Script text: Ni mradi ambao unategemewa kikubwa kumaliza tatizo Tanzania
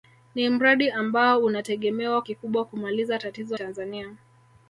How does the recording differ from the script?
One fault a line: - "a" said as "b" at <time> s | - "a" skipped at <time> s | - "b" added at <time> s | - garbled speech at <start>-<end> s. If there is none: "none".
none